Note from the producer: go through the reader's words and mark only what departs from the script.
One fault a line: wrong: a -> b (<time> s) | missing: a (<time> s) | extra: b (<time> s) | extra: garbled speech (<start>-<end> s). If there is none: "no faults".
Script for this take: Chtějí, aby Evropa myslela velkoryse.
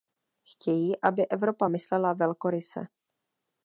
no faults